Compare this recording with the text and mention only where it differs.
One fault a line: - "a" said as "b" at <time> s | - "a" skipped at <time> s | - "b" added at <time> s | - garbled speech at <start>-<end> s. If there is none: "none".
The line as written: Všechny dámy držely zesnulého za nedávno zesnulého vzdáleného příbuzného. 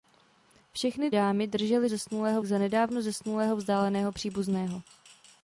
none